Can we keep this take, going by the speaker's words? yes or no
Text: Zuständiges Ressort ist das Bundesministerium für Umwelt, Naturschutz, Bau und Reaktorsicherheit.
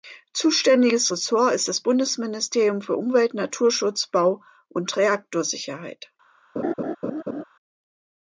yes